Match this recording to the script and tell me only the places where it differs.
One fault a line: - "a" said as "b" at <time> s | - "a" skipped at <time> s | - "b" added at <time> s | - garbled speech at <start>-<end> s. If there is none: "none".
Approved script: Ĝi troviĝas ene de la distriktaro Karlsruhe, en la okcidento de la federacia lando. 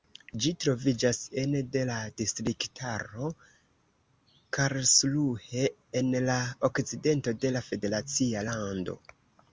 none